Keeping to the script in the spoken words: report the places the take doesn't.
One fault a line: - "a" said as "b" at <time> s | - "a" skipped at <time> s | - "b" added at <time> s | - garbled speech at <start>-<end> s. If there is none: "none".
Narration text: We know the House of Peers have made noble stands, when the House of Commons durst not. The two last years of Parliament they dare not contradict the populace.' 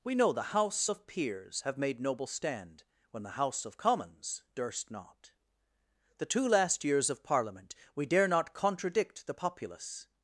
- "stands" said as "stand" at 2.3 s
- "they" said as "we" at 8.0 s